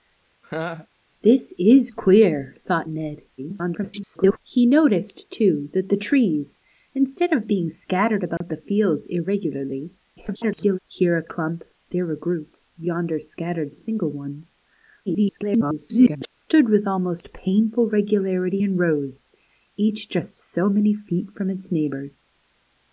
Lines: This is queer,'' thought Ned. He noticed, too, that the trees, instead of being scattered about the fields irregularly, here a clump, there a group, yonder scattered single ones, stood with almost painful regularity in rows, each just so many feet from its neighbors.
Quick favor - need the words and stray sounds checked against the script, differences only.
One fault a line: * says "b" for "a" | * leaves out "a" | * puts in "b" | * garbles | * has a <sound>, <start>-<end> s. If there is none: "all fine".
* has a laugh, 0.4-0.9 s
* garbles
* has a dropout, 8.4-8.4 s
* garbles
* garbles